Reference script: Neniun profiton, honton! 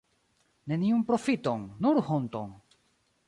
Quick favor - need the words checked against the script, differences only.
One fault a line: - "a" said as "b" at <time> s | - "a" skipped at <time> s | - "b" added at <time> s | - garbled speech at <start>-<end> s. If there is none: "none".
- "nur" added at 1.9 s